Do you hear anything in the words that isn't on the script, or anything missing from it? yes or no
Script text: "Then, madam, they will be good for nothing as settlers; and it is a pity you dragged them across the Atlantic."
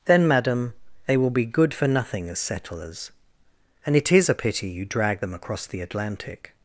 no